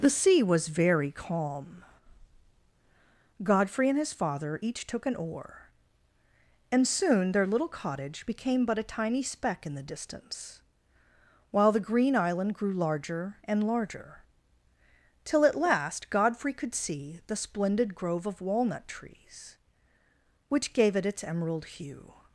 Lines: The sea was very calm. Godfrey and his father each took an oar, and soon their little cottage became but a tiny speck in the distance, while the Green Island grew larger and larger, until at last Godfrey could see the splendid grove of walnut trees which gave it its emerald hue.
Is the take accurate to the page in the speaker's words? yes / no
no